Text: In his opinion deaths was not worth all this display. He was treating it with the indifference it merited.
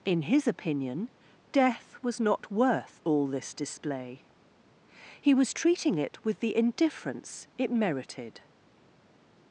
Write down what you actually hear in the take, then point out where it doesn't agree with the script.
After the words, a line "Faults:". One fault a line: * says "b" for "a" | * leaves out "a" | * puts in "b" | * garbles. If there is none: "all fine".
In his opinion death was not worth all this display. He was treating it with the indifference it merited.
Faults:
* says "death" for "deaths"